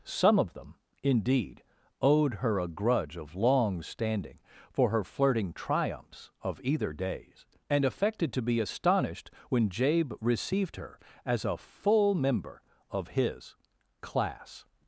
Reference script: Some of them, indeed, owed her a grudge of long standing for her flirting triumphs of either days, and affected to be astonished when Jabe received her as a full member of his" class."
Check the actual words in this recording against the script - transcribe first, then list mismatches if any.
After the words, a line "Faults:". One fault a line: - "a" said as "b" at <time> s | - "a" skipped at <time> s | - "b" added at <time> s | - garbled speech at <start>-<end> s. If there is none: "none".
Some of them, indeed, owed her a grudge of long standing for her flirting triumphs of either days, and affected to be astonished when Jabe received her as a full member of his" class."
Faults:
none